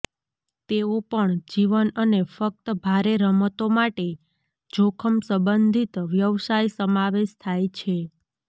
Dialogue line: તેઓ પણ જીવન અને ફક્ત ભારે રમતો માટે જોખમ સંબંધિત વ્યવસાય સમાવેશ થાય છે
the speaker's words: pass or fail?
pass